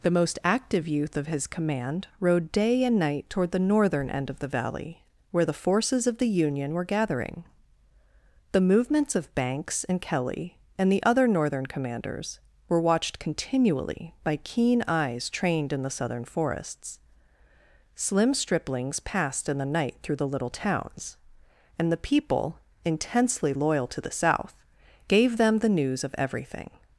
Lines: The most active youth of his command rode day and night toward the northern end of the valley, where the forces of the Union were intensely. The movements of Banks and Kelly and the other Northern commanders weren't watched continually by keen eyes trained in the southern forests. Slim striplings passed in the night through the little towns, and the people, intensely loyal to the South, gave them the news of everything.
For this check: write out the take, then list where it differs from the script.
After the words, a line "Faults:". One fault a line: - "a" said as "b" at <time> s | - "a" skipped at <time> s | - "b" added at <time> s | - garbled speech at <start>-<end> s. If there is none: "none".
The most active youth of his command rode day and night toward the northern end of the valley, where the forces of the Union were gathering. The movements of Banks and Kelly and the other Northern commanders were watched continually by keen eyes trained in the southern forests. Slim striplings passed in the night through the little towns, and the people, intensely loyal to the South, gave them the news of everything.
Faults:
- "intensely" said as "gathering" at 6.8 s
- "weren't" said as "were" at 12.7 s